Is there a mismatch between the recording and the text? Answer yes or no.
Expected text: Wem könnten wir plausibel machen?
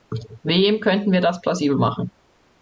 yes